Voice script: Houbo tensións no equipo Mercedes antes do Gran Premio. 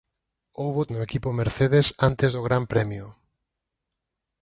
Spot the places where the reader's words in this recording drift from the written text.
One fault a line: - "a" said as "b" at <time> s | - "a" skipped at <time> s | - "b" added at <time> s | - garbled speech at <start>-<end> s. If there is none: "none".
- "tensións" skipped at 0.8 s